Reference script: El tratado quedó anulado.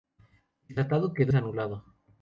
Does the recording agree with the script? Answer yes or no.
yes